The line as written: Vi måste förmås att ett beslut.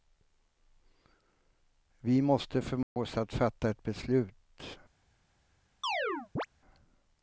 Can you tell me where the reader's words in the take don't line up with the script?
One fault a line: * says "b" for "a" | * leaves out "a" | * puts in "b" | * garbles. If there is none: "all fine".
* puts in "fatta"